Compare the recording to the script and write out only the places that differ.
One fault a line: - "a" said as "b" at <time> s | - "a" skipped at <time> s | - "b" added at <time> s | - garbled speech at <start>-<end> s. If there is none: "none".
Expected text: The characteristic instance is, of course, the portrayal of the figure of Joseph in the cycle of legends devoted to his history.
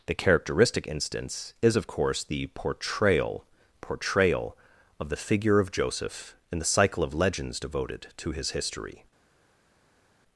- "portrayal" added at 3.8 s